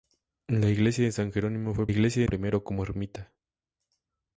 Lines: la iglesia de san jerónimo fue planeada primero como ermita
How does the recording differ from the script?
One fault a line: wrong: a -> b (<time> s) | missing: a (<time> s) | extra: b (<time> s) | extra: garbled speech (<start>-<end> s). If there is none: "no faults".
wrong: planeada -> iglesia (1.9 s)